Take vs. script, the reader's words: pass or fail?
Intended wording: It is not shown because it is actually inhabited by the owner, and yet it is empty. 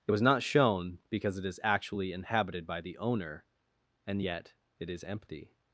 fail